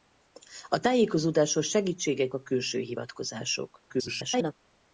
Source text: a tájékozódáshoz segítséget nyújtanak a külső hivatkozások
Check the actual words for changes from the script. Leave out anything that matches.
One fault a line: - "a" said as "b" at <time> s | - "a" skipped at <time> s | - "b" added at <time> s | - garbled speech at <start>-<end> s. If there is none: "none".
- "nyújtanak" skipped at 2.3 s
- garbled speech at 3.9-4.5 s